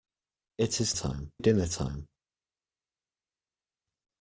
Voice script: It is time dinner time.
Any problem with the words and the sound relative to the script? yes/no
no